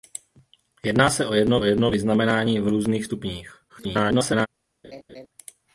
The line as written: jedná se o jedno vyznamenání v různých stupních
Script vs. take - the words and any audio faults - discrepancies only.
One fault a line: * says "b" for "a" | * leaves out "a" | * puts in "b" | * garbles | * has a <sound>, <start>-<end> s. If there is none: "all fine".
* puts in "jedno"
* garbles
* has a laugh, 4.8-5.3 s